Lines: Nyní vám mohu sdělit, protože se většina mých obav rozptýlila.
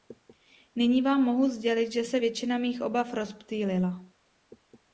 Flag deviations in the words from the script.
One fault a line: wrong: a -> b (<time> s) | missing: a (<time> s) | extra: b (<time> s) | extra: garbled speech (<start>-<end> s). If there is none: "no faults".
wrong: protože -> že (1.9 s)